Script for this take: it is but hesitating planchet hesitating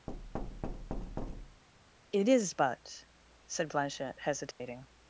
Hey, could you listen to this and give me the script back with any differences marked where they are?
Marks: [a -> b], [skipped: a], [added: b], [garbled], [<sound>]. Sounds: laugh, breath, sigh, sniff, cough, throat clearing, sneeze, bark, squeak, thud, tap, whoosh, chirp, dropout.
[thud] it is but [hesitating -> said] planchet hesitating [dropout]